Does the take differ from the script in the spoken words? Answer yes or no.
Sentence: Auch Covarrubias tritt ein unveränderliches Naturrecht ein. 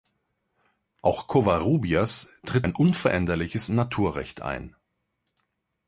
no